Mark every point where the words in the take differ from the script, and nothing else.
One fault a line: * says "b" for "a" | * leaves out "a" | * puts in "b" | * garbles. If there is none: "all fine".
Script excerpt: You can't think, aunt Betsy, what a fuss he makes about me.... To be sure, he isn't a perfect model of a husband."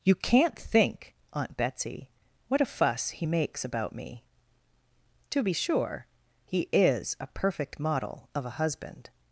* says "is" for "isn't"